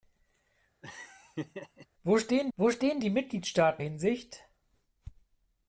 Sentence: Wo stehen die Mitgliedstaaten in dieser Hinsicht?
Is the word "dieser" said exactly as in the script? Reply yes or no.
no